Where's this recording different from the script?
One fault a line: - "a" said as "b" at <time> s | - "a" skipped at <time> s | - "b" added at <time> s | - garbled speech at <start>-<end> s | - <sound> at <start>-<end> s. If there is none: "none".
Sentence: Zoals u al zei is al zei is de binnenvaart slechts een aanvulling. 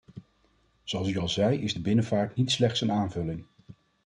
- "al zei is" skipped at 1.8 s
- "niet" added at 2.3 s